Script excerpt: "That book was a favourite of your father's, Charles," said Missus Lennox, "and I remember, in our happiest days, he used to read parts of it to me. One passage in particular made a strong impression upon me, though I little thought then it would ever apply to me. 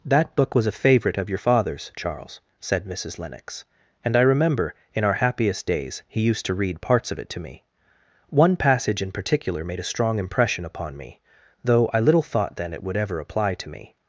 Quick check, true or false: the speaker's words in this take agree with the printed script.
true